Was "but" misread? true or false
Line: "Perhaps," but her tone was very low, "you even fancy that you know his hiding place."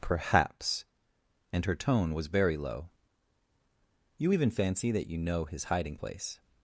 true